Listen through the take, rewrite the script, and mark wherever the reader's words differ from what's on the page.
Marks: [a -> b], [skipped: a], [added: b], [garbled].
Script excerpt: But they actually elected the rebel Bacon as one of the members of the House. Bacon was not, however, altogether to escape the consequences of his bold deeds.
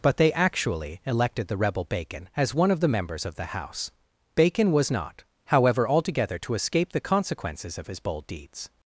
But they actually elected the rebel Bacon as one of the members of the House. Bacon was not, however, altogether to escape the consequences of his bold deeds.